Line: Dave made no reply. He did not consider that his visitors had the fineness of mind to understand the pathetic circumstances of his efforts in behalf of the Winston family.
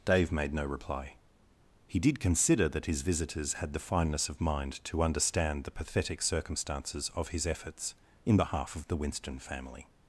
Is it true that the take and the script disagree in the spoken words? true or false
true